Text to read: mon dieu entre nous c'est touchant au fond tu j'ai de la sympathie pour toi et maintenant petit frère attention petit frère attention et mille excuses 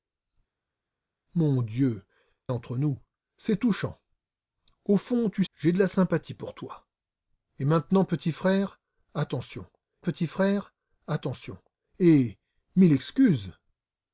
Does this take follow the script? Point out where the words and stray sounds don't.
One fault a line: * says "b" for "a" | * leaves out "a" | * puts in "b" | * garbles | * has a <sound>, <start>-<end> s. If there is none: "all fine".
all fine